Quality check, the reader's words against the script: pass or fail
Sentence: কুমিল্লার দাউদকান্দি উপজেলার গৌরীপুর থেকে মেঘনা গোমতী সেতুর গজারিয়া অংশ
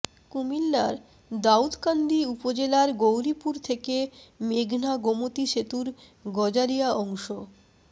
pass